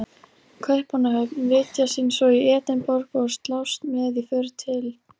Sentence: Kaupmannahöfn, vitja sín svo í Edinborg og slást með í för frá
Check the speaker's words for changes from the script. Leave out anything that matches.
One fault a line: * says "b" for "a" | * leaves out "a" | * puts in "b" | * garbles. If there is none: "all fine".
* says "til" for "frá"